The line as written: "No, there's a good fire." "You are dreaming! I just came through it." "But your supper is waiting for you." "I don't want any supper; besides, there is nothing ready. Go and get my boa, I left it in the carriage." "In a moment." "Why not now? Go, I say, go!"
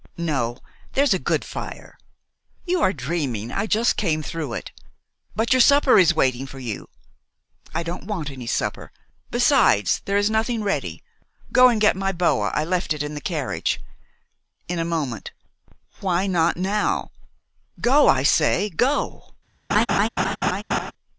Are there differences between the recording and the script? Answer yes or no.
no